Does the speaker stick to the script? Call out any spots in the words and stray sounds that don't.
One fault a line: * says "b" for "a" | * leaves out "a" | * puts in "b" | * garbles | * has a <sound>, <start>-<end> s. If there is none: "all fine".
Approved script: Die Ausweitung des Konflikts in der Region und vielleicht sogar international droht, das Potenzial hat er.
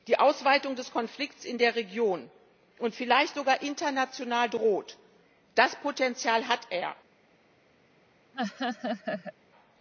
* has a laugh, 8.3-9.3 s